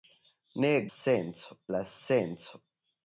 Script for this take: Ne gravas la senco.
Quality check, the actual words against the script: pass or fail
fail